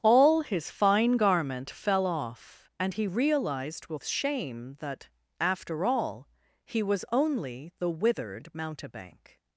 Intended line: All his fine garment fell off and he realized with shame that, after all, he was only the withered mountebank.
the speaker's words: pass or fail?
pass